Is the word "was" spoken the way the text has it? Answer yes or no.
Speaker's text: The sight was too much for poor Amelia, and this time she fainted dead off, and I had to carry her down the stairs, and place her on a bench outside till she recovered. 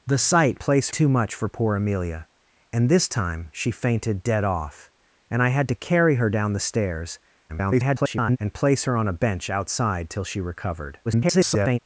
no